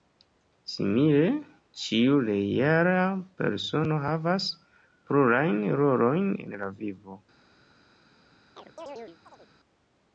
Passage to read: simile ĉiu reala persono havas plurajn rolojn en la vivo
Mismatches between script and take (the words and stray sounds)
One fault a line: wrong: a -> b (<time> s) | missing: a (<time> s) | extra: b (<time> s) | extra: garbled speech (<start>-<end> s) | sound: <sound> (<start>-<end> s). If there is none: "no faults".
sound: chirp (8.6-9.5 s)